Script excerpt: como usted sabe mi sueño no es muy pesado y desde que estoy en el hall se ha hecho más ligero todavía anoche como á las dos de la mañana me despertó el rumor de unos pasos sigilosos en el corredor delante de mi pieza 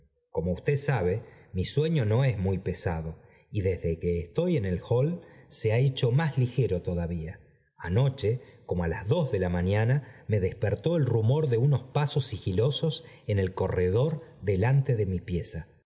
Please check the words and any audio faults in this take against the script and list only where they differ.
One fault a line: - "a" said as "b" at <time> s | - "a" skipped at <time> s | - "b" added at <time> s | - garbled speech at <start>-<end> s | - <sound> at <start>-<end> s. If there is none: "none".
none